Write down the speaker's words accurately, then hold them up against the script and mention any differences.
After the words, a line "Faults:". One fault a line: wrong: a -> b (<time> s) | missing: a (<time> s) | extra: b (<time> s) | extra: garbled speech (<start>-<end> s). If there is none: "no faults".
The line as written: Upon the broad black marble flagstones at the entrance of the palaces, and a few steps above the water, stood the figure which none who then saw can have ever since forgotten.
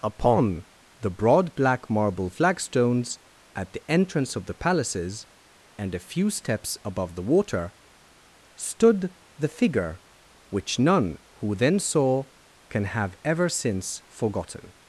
Upon the broad black marble flagstones at the entrance of the palaces, and a few steps above the water, stood the figure which none who then saw can have ever since forgotten.
Faults:
no faults